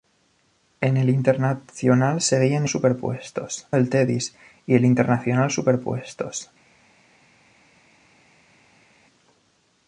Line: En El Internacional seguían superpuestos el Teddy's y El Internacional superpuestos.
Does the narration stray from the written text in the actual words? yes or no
no